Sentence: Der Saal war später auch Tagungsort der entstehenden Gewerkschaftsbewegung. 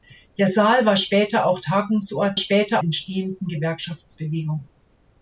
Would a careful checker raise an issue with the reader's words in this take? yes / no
yes